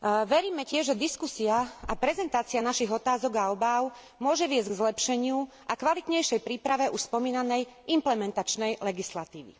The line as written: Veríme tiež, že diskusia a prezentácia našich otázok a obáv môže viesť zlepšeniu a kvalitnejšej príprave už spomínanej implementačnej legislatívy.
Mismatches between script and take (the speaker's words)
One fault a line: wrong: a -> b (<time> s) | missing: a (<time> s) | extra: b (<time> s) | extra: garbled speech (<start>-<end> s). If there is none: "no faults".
extra: k (4.7 s)